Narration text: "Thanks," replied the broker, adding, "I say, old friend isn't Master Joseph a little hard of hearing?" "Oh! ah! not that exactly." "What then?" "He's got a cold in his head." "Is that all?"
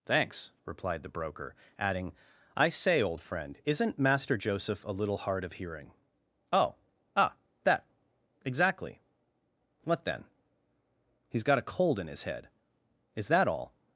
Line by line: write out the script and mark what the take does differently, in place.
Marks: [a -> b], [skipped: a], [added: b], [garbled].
"Thanks," replied the broker, adding, "I say, old friend isn't Master Joseph a little hard of hearing?" "Oh! ah! [skipped: not] that exactly." "What then?" "He's got a cold in his head." "Is that all?"